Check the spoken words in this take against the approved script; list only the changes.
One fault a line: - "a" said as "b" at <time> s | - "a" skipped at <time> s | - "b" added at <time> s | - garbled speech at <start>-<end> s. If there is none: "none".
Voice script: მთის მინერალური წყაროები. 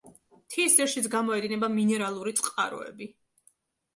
- "ძირშიც გამოედინება" added at 0.8 s